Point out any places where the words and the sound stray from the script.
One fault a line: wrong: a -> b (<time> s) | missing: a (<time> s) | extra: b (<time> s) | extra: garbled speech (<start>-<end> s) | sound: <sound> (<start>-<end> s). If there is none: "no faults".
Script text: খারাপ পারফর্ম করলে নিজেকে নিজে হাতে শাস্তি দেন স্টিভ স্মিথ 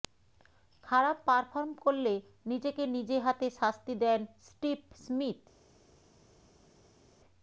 no faults